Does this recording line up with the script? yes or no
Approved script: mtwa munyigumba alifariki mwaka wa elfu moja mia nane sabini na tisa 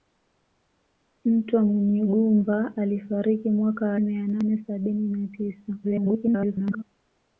no